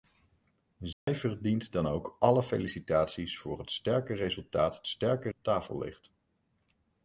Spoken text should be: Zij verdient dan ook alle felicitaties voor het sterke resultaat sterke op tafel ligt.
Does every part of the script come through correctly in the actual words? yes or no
yes